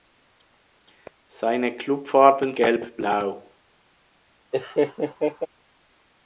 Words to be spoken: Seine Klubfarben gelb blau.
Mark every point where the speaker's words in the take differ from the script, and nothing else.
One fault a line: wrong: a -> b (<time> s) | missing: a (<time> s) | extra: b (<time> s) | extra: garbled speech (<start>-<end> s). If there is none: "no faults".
no faults